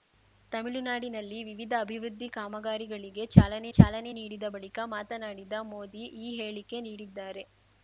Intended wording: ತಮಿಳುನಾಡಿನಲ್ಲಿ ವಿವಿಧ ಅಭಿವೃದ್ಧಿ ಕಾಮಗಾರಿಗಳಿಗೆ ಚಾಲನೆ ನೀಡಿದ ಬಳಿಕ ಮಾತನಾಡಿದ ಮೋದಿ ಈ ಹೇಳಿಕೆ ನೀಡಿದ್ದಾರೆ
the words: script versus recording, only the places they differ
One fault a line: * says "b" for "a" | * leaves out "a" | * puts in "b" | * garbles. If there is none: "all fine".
* puts in "ಚಾಲನೆ"